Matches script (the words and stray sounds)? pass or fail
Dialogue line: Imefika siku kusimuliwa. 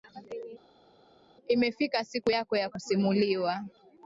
fail